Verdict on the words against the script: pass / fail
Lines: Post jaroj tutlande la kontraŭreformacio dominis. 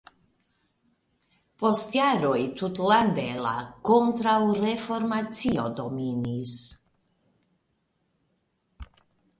pass